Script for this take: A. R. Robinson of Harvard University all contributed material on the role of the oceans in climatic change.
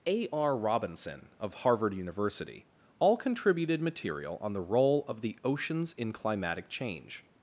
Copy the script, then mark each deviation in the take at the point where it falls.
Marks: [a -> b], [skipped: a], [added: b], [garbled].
A. R. Robinson of Harvard University all contributed material on the role of the oceans in climatic change.